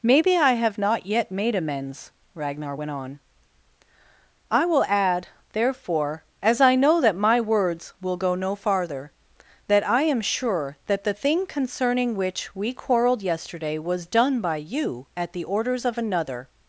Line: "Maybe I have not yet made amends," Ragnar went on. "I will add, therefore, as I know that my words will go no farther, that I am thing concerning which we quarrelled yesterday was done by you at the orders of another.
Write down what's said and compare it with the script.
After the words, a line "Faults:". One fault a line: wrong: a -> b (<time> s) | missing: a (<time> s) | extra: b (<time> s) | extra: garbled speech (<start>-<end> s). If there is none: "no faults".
"Maybe I have not yet made amends," Ragnar went on. "I will add, therefore, as I know that my words will go no farther, that I am sure that the thing concerning which we quarrelled yesterday was done by you at the orders of another.
Faults:
extra: sure that the (10.2 s)